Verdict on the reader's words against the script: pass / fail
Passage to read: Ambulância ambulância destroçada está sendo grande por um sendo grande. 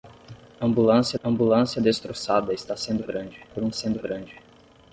pass